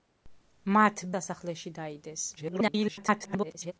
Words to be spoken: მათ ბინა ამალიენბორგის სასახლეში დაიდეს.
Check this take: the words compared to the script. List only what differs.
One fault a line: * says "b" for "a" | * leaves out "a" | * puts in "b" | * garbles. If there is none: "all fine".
* leaves out "ბინა ამალიენბორგის"
* garbles